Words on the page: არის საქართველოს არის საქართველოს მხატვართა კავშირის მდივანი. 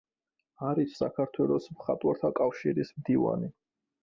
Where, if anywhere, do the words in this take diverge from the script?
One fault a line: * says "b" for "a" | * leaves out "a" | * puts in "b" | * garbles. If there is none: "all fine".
* leaves out "არის საქართველოს"